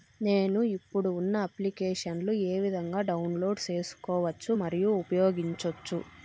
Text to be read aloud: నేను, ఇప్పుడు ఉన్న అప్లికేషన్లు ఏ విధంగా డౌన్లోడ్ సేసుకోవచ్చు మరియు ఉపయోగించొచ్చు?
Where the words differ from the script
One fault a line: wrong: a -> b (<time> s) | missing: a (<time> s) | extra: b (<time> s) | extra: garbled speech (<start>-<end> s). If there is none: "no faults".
no faults